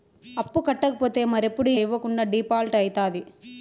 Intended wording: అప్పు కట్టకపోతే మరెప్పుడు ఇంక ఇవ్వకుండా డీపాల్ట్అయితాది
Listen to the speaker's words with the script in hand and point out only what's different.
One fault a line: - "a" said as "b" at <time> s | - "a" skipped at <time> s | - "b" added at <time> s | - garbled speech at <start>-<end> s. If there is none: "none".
- "ఇంక" skipped at 1.7 s